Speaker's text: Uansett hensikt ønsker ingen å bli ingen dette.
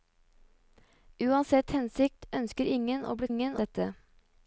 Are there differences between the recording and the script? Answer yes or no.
no